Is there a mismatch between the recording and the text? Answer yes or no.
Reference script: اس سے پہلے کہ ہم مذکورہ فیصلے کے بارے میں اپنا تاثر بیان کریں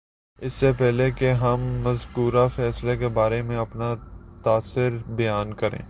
no